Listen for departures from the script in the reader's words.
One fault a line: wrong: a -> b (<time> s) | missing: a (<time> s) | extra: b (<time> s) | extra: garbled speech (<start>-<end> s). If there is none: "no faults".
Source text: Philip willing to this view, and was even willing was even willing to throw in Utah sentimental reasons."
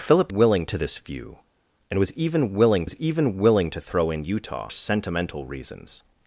no faults